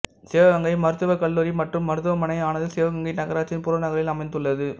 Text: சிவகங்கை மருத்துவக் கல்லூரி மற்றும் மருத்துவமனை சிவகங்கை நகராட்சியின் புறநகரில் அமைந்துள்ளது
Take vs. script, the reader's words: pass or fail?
fail